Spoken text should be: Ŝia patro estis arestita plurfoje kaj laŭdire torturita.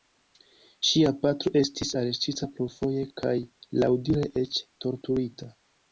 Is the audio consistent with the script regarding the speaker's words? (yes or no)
no